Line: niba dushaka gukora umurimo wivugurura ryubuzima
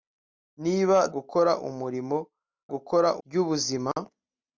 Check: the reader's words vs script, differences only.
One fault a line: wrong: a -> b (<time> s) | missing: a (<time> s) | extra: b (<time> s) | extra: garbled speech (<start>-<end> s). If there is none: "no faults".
missing: dushaka (1.0 s)
wrong: wivugurura -> gukora (2.7 s)